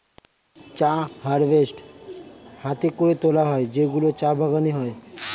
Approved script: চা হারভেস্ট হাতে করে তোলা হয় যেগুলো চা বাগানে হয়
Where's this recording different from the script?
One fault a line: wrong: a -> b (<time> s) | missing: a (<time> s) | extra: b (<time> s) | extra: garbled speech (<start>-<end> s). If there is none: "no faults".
no faults